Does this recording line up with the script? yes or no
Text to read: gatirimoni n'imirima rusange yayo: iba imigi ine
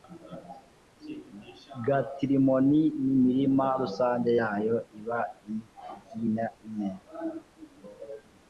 yes